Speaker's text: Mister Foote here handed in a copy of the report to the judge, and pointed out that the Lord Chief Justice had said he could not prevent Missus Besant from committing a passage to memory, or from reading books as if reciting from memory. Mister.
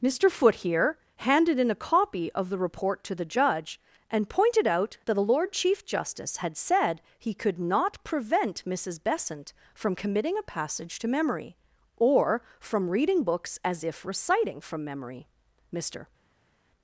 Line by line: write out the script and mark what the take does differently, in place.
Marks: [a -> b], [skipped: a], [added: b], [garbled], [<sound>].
Mister Foote here handed in a copy of the report to the judge, and pointed out that the Lord Chief Justice had said he could not prevent Missus Besant from committing a passage to memory, or from reading books as if reciting from memory. Mister.